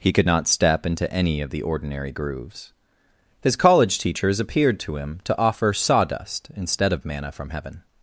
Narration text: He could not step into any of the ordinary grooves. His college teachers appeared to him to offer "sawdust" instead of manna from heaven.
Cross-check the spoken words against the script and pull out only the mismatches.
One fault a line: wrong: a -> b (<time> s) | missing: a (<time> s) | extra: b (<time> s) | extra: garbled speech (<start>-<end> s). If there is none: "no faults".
no faults